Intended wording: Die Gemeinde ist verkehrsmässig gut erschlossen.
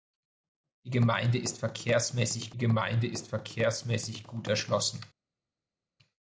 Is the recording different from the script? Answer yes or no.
yes